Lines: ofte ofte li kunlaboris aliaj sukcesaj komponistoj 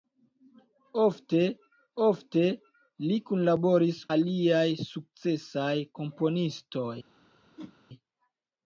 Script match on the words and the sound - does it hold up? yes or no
no